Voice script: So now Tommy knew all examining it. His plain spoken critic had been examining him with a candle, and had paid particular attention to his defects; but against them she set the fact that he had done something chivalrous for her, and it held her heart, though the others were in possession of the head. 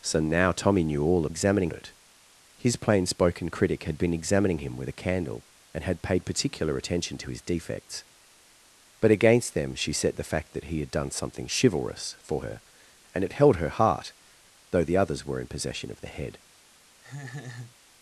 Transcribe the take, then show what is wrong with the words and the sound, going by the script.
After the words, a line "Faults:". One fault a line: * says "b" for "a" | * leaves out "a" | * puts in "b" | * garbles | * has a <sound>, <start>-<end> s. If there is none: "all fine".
So now Tommy knew all examining it. His plain spoken critic had been examining him with a candle, and had paid particular attention to his defects; but against them she set the fact that he had done something chivalrous for her, and it held her heart, though the others were in possession of the head.
Faults:
* has a laugh, 17.0-17.8 s